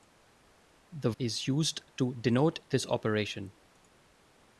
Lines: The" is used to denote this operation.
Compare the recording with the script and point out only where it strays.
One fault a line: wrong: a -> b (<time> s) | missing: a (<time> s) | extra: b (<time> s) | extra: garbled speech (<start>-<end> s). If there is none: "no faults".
no faults